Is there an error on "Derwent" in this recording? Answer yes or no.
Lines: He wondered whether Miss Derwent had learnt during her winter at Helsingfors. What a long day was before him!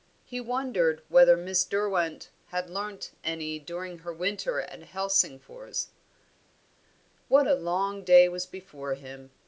no